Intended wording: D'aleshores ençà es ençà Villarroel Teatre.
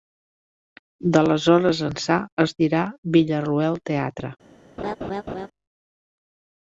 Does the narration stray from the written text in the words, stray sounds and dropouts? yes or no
yes